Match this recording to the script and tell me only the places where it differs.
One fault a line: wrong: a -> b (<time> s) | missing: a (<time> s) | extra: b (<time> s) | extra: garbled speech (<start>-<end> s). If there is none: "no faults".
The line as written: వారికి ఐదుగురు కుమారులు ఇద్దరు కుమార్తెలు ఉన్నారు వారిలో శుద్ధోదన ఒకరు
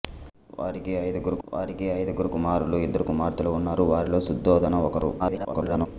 extra: వారికి ఐదుగురు (1.4 s)
extra: garbled speech (5.2-5.9 s)